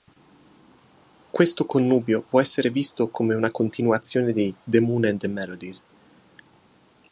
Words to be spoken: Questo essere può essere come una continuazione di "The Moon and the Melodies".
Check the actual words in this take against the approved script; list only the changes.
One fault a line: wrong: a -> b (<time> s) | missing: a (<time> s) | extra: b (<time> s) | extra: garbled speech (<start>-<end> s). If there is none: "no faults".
wrong: essere -> connubio (1.7 s)
extra: visto (2.7 s)